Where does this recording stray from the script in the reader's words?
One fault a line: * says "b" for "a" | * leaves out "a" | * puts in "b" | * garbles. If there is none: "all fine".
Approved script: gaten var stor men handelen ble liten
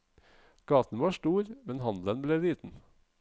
all fine